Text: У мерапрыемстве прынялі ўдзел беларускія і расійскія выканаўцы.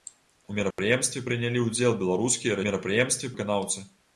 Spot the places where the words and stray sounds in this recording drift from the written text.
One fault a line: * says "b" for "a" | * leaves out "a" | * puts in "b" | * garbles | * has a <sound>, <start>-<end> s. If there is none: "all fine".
* has a dropout, 0.7-0.8 s
* says "мерапрыемстве" for "расійскія"